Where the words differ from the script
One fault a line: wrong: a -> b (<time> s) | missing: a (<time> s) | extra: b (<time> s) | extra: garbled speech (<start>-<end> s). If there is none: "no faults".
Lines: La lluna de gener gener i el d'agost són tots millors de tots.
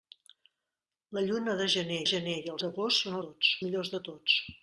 no faults